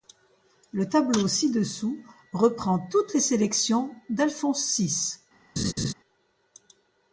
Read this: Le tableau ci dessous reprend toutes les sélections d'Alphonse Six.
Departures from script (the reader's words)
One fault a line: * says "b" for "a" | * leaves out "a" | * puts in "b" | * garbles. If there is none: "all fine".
all fine